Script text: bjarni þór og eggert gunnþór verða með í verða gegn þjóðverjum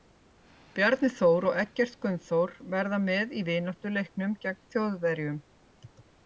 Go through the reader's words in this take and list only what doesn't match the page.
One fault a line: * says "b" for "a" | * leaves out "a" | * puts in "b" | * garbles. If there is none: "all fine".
* says "vináttuleiknum" for "verða"